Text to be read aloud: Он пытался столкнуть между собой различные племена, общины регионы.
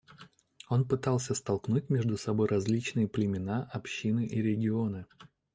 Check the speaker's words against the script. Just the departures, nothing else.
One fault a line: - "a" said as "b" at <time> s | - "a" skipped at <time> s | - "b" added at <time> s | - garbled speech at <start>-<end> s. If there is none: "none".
- "и" added at 4.2 s